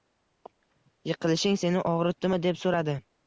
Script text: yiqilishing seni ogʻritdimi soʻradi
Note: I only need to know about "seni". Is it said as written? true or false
true